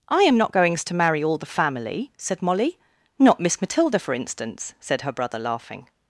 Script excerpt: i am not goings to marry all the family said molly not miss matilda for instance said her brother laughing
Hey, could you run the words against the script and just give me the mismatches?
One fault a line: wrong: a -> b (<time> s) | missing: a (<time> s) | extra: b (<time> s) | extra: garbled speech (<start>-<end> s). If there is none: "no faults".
no faults